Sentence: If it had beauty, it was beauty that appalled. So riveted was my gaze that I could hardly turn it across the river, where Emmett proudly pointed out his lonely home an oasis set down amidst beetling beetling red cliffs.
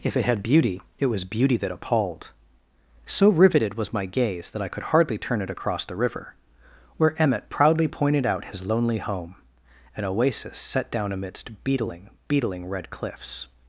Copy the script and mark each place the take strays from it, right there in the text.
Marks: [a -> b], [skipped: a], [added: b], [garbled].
If it had beauty, it was beauty that appalled. So riveted was my gaze that I could hardly turn it across the river, where Emmett proudly pointed out his lonely home an oasis set down amidst beetling beetling red cliffs.